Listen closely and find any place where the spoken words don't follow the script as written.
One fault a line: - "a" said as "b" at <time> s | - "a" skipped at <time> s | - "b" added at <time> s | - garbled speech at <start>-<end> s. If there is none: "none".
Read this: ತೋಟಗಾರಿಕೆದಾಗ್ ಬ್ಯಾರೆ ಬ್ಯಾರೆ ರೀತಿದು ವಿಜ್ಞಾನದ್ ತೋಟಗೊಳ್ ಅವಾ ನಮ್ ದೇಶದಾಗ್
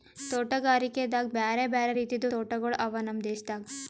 - "ವಿಜ್ಞಾನದ್" skipped at 2.3 s